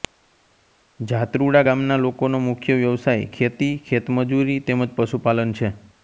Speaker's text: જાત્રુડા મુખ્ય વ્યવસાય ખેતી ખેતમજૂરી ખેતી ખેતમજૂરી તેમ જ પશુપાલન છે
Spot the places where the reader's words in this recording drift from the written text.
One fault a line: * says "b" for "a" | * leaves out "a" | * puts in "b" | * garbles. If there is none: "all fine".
* puts in "ગામના લોકોનો"
* leaves out "ખેતી ખેતમજૂરી"